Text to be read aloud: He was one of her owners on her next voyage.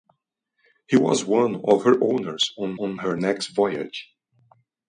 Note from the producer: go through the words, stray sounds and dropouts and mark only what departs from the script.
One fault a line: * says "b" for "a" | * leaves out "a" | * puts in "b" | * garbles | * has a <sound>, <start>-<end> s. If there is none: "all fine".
* puts in "on"